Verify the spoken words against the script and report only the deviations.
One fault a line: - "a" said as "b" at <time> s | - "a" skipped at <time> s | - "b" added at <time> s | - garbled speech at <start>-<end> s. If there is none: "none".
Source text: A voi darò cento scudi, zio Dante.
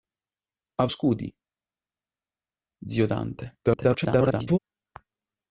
- "voi darò cento" skipped at 0.8 s
- garbled speech at 3.6-4.6 s